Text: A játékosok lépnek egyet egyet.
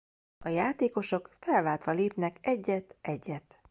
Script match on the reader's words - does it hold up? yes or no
no